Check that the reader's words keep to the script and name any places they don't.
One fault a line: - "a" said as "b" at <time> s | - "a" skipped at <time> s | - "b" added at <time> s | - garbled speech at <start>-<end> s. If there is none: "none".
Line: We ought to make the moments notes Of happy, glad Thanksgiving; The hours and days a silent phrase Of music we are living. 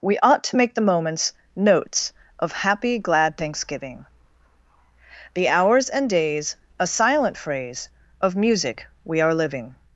none